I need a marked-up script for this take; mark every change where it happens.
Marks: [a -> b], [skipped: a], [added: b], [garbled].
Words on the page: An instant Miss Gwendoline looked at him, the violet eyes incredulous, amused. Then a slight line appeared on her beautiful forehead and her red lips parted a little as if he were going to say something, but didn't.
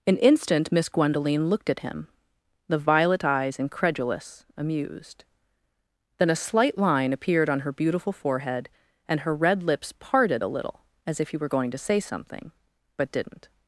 An instant Miss Gwendoline looked at him, the violet eyes incredulous, amused. Then a slight line appeared on her beautiful forehead and her red lips parted a little as if he were going to say something, but didn't.